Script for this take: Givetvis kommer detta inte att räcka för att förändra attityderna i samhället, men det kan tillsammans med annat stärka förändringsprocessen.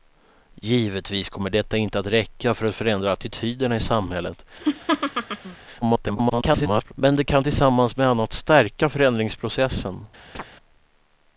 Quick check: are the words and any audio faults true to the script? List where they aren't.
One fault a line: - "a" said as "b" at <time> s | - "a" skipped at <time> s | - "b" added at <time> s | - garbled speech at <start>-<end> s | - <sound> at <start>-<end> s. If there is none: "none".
- laugh at 4.6-5.6 s
- garbled speech at 5.8-6.9 s
- chirp at 10.3-10.4 s